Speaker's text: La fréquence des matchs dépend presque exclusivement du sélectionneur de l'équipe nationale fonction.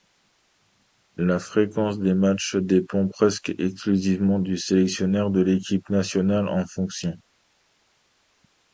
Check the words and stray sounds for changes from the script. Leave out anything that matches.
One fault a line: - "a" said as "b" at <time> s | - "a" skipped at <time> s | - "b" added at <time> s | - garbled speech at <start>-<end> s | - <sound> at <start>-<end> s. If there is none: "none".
- "en" added at 6.5 s